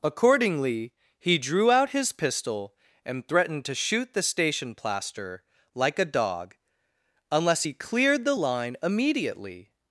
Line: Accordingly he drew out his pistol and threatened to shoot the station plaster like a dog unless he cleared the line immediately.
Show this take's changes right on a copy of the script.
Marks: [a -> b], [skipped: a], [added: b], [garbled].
Accordingly he drew out his pistol and threatened to shoot the station plaster like a dog unless he cleared the line immediately.